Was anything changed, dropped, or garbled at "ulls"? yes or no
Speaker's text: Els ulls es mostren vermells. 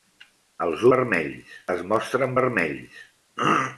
yes